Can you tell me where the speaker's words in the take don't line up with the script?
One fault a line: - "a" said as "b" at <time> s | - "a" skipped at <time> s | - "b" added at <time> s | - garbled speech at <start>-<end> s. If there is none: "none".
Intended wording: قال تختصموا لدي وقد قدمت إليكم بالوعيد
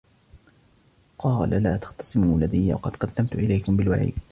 - "لا" added at 1.5 s